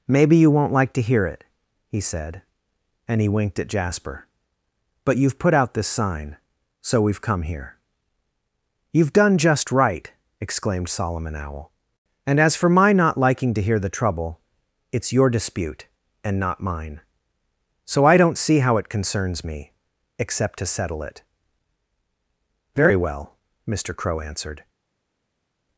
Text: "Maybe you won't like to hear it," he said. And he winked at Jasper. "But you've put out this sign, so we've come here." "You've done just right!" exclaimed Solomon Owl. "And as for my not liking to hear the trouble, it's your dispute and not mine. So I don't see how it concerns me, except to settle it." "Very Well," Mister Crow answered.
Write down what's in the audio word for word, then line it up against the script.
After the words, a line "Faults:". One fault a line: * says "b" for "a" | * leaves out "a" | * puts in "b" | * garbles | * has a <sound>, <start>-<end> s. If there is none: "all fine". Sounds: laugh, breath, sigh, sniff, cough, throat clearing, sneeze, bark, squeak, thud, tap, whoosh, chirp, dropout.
"Maybe you won't like to hear it," he said. And he winked at Jasper. "But you've put out this sign, so we've come here." "You've done just right!" exclaimed Solomon Owl. "And as for my not liking to hear the trouble, it's your dispute and not mine. So I don't see how it concerns me, except to settle it." "Very Well," Mister Crow answered.
Faults:
all fine